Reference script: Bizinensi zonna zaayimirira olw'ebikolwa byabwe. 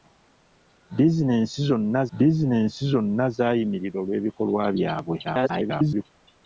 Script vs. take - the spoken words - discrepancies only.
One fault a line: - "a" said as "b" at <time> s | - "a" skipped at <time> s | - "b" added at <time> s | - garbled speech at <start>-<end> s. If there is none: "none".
- "bizinensi zonna" added at 2.2 s
- garbled speech at 5.2-6.1 s